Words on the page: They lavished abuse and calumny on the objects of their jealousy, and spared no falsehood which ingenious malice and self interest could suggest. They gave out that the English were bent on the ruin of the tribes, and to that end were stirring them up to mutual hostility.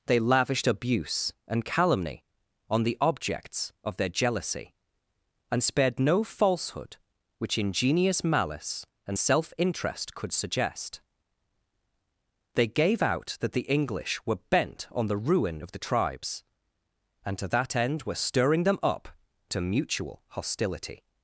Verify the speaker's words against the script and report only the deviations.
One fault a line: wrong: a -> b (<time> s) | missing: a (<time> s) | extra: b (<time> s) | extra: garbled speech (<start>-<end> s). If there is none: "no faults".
no faults